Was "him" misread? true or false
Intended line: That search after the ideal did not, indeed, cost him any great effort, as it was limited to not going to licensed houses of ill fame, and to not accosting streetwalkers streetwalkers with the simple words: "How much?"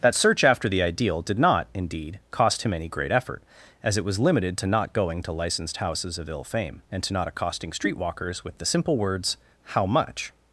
false